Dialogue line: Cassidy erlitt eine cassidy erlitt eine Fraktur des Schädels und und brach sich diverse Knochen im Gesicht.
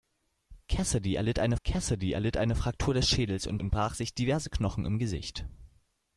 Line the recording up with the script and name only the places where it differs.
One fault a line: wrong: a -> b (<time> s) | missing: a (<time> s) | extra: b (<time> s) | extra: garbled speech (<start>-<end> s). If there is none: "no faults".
no faults